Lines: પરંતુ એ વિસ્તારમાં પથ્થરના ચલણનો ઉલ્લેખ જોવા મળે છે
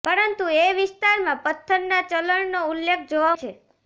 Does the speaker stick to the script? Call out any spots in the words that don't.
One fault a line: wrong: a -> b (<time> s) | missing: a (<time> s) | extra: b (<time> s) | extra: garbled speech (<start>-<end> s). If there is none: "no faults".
missing: મળે (3.4 s)